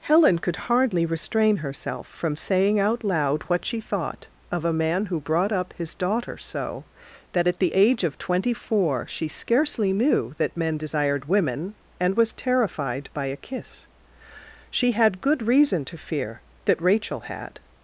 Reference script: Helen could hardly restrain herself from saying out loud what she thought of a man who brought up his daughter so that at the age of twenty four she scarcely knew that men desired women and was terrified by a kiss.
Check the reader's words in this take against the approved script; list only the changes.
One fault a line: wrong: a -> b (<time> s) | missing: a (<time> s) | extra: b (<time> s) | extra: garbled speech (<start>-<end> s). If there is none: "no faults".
extra: She had good reason to fear that Rachel had (14.7 s)